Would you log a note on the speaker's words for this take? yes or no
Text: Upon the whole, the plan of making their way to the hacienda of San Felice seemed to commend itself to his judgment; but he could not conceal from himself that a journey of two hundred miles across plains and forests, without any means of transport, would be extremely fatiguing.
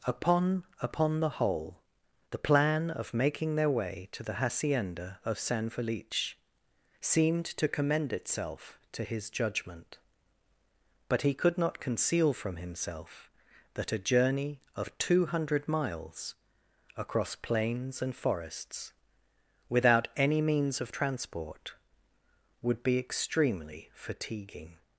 yes